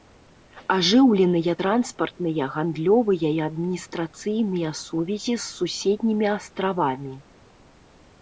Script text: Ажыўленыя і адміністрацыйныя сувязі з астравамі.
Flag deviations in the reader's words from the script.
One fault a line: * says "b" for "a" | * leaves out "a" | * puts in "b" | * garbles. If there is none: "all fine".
* puts in "транспартныя гандлёвыя"
* puts in "суседнімі"